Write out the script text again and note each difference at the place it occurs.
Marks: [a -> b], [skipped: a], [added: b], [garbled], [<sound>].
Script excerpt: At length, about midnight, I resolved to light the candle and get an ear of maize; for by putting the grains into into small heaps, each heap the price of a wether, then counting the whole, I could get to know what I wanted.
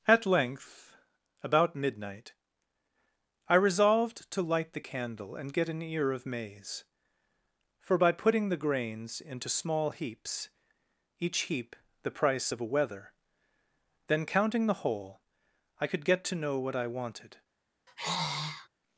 At length, about midnight, I resolved to light the candle and get an ear of maize; for by putting the grains into [skipped: into] small heaps, each heap the price of a wether, then counting the whole, I could get to know what I wanted. [sigh]